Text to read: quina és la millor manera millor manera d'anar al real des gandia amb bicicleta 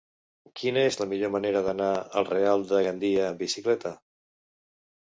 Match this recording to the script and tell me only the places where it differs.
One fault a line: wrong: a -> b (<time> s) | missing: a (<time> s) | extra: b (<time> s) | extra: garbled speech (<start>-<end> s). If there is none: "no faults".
missing: millor manera (1.6 s)
wrong: des -> de (2.7 s)